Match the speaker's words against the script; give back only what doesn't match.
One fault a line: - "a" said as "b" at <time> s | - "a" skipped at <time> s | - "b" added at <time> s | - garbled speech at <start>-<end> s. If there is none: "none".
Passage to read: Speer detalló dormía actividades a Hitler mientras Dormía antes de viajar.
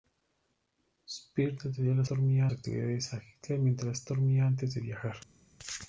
none